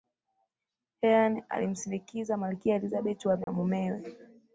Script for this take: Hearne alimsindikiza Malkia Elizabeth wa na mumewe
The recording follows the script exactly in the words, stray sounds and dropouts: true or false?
false